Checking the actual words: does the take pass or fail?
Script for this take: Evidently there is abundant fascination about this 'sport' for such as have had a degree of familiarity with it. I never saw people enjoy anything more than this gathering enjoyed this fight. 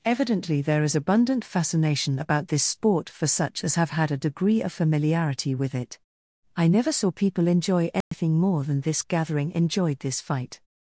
pass